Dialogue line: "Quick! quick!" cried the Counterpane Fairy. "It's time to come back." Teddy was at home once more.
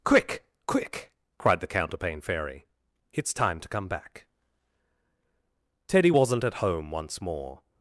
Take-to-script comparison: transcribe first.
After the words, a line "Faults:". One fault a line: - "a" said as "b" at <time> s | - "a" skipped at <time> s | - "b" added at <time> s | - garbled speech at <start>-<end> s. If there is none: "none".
"Quick! quick!" cried the Counterpane Fairy. "It's time to come back." Teddy wasn't at home once more.
Faults:
- "was" said as "wasn't" at 6.1 s